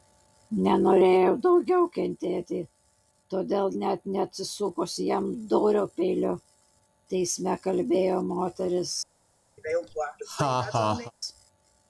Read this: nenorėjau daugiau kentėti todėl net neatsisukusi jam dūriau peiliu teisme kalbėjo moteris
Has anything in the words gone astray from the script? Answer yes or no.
no